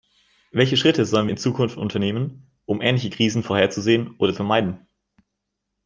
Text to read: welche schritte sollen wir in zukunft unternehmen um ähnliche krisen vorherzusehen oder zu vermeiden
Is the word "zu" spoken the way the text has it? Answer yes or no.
no